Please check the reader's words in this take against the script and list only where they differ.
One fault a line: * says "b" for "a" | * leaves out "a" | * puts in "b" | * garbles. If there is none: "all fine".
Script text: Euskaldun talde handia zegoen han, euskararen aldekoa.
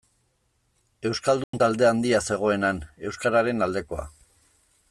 all fine